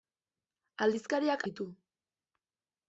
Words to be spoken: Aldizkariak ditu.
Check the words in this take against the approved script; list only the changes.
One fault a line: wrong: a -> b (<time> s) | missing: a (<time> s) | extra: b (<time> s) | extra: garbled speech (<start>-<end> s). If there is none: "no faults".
no faults